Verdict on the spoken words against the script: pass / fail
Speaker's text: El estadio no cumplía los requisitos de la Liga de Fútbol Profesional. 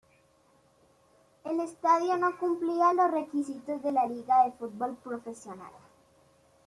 pass